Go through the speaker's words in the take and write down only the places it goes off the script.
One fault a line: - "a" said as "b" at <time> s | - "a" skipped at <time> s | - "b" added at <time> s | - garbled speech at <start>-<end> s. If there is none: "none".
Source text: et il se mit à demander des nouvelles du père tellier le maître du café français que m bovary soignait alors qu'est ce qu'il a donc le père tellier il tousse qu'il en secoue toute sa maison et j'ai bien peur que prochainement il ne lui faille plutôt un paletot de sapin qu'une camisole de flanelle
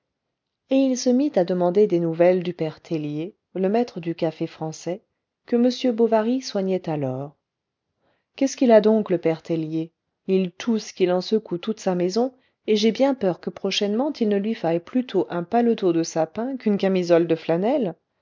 none